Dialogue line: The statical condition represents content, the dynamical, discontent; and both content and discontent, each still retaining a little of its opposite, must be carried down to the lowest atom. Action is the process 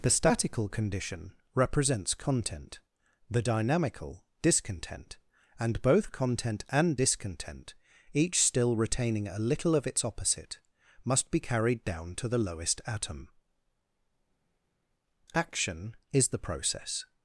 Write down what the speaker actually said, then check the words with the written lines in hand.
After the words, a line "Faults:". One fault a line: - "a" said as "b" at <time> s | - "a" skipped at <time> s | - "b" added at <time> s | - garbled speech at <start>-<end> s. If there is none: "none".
The statical condition represents content, the dynamical, discontent; and both content and discontent, each still retaining a little of its opposite, must be carried down to the lowest atom. Action is the process
Faults:
none